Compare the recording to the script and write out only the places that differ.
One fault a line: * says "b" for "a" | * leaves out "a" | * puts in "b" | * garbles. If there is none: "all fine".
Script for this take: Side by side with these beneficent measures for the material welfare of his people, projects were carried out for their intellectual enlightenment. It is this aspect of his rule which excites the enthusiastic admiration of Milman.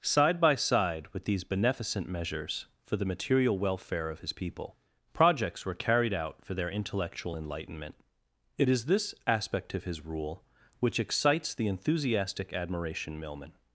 * leaves out "of"